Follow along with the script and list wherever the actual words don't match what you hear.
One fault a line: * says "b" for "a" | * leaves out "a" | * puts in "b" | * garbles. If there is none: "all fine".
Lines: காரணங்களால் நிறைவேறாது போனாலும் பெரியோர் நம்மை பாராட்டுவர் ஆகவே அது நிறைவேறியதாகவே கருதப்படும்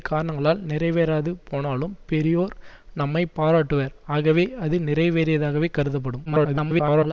* garbles